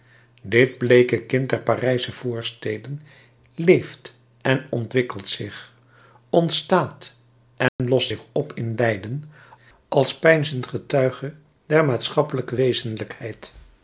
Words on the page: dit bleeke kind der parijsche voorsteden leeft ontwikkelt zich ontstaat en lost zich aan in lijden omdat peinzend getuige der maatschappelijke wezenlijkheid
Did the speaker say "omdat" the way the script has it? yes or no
no